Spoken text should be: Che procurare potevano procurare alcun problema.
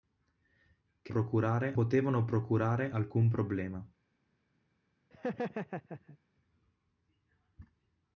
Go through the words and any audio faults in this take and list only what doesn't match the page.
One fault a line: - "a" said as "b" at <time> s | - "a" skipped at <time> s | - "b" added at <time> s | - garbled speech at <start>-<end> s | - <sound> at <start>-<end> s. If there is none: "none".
- laugh at 5.1-6.2 s